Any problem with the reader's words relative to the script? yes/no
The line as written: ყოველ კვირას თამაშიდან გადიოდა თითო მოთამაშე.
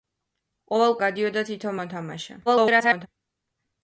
yes